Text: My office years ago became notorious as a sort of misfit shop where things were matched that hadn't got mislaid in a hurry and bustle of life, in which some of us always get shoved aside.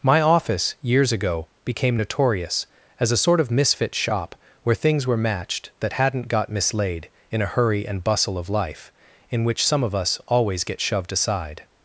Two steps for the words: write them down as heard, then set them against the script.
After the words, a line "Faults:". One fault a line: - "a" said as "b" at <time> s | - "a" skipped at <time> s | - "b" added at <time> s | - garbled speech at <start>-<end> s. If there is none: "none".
My office years ago became notorious as a sort of misfit shop where things were matched that hadn't got mislaid in a hurry and bustle of life, in which some of us always get shoved aside.
Faults:
none